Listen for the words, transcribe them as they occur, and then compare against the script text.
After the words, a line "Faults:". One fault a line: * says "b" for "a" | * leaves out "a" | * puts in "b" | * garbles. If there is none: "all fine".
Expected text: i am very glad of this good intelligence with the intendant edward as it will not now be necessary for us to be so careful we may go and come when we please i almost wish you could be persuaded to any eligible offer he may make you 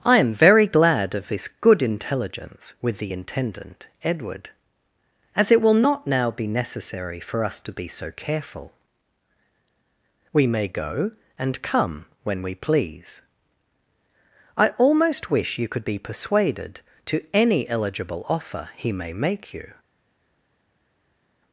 i am very glad of this good intelligence with the intendant edward as it will not now be necessary for us to be so careful we may go and come when we please i almost wish you could be persuaded to any eligible offer he may make you
Faults:
all fine